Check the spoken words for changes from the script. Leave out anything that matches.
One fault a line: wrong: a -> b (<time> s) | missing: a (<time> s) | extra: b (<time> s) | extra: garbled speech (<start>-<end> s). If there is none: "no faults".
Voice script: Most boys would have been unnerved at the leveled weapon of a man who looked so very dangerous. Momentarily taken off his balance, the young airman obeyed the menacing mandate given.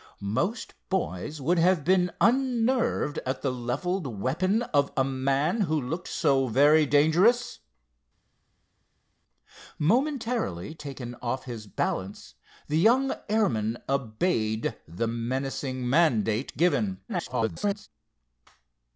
extra: garbled speech (17.1-17.9 s)